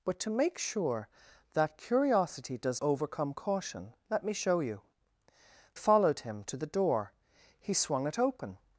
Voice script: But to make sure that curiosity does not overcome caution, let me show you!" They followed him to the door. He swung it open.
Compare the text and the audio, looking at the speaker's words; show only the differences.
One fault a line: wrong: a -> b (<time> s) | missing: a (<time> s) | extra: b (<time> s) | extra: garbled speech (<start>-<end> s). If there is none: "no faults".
missing: not (2.8 s)
missing: They (4.8 s)